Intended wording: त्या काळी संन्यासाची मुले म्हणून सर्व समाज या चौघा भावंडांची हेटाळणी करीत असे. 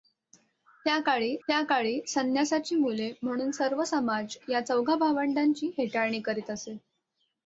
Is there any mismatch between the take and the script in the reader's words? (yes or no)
yes